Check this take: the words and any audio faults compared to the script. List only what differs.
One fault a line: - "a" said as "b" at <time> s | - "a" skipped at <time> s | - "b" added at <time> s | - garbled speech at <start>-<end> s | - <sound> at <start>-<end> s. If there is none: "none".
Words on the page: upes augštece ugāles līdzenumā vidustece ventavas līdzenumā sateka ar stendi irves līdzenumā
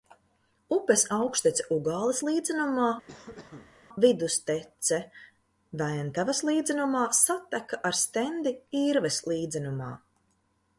- cough at 3.1-3.8 s